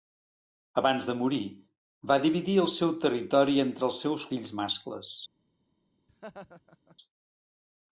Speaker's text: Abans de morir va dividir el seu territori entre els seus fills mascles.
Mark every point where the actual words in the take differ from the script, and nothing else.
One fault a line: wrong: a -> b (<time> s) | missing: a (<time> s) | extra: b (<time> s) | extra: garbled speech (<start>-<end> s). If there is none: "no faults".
no faults